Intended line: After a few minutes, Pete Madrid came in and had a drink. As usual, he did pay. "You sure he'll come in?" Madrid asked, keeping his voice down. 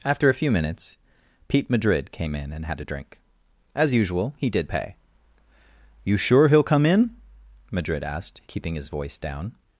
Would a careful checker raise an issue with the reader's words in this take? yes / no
no